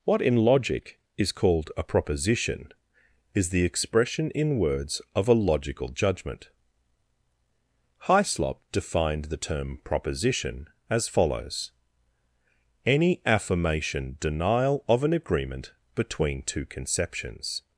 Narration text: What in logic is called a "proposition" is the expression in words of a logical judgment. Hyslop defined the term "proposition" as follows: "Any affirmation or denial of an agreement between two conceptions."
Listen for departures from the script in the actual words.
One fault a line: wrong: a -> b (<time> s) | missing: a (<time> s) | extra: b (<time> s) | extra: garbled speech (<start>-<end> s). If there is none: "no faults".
missing: or (14.2 s)